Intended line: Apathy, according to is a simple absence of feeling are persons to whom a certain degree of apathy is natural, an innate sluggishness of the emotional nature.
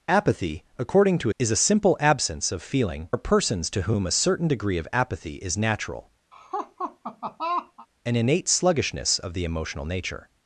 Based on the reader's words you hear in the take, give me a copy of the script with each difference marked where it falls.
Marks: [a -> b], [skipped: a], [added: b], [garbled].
Apathy, according to is a simple absence of feeling are persons to whom a certain degree of apathy is natural, an innate sluggishness of the emotional nature.